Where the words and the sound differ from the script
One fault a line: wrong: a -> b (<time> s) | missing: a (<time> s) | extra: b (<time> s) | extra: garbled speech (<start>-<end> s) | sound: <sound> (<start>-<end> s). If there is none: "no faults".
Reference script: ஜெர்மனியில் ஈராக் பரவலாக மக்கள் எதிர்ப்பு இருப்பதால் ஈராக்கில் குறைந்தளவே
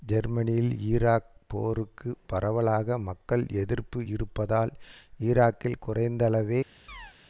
extra: போருக்கு (1.5 s)
sound: chirp (6.9-7.2 s)